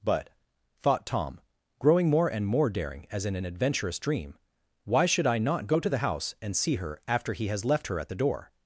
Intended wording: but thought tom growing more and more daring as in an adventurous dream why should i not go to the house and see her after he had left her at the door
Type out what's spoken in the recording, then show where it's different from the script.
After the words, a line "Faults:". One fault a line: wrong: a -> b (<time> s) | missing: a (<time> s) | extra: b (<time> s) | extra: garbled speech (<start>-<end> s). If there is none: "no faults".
but thought tom growing more and more daring as in an adventurous dream why should i not go to the house and see her after he has left her at the door
Faults:
wrong: had -> has (7.5 s)